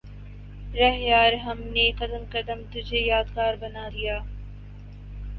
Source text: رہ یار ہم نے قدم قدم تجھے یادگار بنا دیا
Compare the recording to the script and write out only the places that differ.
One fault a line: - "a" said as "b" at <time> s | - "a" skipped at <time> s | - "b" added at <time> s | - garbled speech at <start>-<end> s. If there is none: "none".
none